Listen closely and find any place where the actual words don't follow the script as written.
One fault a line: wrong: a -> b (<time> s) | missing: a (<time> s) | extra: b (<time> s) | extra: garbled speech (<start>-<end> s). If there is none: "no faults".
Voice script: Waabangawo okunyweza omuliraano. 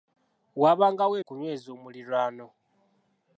no faults